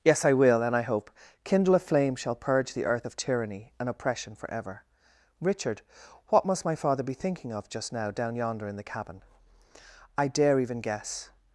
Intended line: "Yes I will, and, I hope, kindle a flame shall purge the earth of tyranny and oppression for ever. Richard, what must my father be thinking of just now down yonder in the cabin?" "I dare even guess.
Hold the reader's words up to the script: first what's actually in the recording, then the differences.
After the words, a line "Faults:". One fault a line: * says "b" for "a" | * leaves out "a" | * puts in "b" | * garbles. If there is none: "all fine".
"Yes I will, and, I hope, kindle a flame shall purge the earth of tyranny and oppression for ever. Richard, what must my father be thinking of just now down yonder in the cabin?" "I dare even guess.
Faults:
all fine